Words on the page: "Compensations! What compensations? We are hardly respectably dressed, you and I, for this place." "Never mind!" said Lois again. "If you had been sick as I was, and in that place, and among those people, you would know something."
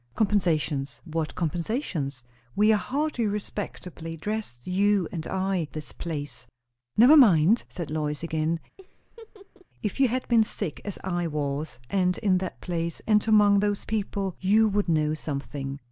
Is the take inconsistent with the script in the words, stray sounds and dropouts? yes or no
yes